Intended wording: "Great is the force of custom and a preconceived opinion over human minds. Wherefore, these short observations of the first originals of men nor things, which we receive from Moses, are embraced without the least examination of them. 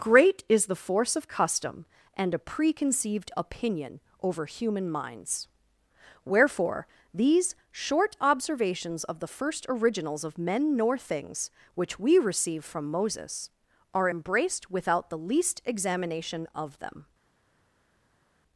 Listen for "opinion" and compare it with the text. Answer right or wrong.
right